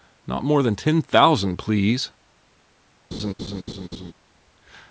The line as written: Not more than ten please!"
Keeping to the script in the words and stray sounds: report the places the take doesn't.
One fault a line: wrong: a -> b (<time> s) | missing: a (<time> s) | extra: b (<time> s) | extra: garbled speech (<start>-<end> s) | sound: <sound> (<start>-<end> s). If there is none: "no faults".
extra: thousand (1.0 s)
sound: laugh (3.1-4.1 s)